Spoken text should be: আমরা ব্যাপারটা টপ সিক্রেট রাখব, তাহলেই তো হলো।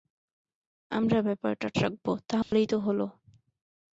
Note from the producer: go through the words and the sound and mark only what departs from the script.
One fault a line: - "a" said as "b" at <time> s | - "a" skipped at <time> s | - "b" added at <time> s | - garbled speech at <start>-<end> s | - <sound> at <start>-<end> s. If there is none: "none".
- "টপ সিক্রেট" skipped at 1.7 s
- dropout at 2.4-2.5 s